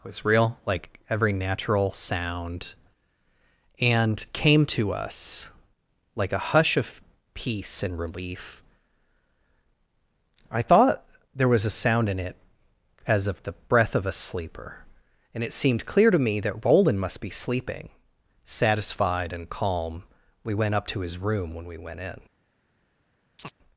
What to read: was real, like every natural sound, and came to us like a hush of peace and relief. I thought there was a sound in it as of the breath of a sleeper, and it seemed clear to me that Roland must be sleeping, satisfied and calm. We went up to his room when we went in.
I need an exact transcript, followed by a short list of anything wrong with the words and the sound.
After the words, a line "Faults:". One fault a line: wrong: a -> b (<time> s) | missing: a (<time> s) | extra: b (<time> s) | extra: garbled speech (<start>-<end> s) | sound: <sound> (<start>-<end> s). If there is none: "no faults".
was real, like every natural sound, and came to us like a hush of peace and relief. I thought there was a sound in it as of the breath of a sleeper, and it seemed clear to me that Roland must be sleeping, satisfied and calm. We went up to his room when we went in.
Faults:
sound: chirp (23.4-23.5 s)